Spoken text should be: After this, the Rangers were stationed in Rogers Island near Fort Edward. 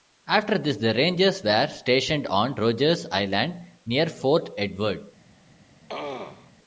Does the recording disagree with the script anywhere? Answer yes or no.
yes